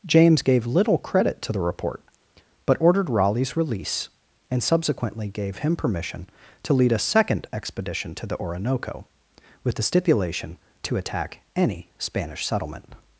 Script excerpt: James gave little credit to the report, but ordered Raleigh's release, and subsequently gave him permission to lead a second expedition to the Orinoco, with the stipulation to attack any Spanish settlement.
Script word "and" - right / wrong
right